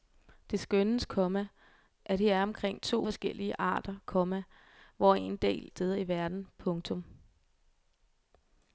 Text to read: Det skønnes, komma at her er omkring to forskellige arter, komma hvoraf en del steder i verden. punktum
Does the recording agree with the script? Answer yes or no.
yes